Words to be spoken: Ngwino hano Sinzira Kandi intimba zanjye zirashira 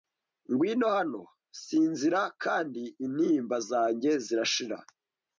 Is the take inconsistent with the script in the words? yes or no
no